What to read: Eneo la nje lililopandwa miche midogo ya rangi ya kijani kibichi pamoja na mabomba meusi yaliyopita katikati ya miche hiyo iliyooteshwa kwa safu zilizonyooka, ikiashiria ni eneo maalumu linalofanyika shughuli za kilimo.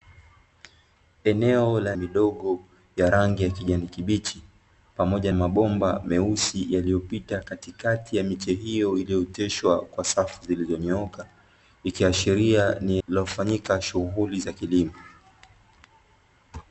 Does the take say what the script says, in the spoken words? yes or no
no